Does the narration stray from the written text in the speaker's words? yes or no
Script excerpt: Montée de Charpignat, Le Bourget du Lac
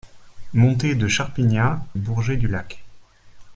yes